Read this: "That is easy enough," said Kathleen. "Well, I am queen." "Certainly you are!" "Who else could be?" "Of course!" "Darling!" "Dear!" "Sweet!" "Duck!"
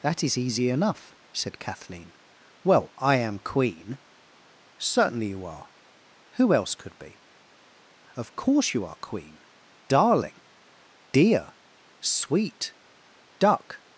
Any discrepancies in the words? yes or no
yes